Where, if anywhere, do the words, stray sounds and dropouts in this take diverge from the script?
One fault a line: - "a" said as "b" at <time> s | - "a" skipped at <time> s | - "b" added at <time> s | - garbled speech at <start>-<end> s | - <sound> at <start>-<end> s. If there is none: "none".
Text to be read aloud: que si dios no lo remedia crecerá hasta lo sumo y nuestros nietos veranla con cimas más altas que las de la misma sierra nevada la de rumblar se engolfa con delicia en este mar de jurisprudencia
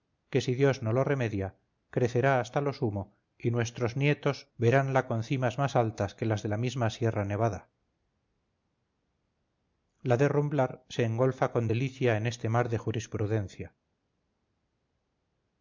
none